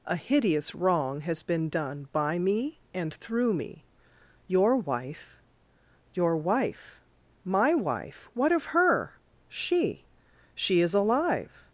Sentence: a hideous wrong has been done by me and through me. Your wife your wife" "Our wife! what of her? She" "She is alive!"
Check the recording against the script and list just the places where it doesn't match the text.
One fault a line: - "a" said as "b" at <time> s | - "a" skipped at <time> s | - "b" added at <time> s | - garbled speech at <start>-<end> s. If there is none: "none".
- "Our" said as "My" at 7.5 s